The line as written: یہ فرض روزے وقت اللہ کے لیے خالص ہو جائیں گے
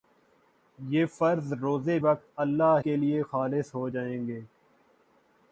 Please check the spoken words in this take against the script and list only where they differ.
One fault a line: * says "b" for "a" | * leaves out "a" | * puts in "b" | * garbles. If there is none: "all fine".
all fine